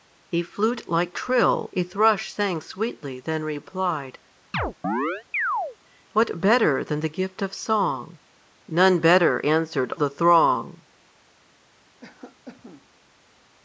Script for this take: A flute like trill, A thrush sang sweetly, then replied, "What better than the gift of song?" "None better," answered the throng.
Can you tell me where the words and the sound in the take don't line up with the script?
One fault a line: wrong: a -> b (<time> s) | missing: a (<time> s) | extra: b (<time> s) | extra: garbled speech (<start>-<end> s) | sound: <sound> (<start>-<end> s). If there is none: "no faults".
sound: chirp (4.5-5.8 s)
sound: cough (12.0-12.9 s)